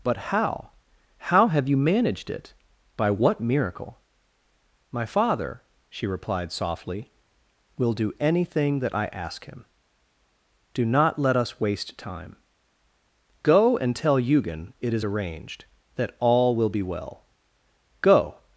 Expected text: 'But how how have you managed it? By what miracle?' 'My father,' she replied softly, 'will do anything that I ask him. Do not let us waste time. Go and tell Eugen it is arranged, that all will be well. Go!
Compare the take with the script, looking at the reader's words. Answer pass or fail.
pass